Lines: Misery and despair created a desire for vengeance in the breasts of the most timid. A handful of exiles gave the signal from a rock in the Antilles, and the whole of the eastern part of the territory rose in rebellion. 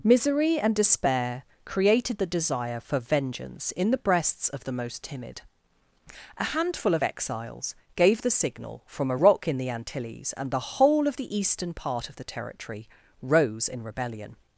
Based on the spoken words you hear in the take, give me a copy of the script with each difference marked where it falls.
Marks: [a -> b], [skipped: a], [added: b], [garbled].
Misery and despair created [a -> the] desire for vengeance in the breasts of the most timid. A handful of exiles gave the signal from a rock in the Antilles, and the whole of the eastern part of the territory rose in rebellion.